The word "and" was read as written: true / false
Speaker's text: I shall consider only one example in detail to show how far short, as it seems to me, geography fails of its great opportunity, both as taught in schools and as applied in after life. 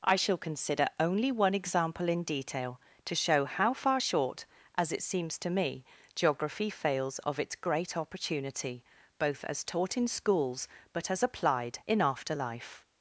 false